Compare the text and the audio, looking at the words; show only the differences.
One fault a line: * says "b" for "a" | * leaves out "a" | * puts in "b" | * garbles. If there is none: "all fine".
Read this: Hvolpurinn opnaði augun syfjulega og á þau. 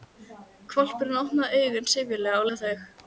all fine